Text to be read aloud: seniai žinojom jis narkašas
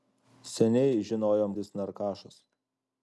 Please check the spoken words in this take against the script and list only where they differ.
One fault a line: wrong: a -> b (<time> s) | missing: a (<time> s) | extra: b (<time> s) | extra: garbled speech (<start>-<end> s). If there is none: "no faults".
no faults